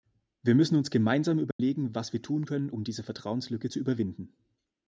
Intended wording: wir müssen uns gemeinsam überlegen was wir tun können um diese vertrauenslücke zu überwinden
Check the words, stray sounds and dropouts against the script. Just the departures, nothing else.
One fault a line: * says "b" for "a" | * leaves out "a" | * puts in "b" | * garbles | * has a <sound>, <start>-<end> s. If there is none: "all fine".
* has a dropout, 1.5-1.6 s